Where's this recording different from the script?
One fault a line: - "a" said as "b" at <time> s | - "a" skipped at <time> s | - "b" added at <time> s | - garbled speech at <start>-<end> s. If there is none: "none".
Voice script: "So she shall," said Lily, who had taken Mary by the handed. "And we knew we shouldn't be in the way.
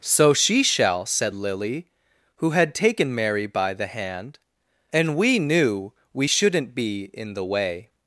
- "handed" said as "hand" at 3.9 s